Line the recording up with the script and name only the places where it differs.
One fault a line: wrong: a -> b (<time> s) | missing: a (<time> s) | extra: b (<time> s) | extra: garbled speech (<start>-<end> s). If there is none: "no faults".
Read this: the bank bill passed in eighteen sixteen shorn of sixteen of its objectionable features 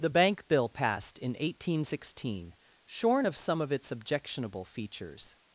wrong: sixteen -> some (3.3 s)